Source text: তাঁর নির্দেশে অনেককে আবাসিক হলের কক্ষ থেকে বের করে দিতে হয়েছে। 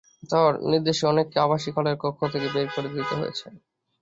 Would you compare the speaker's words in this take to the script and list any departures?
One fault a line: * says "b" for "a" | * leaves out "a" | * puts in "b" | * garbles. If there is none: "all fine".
all fine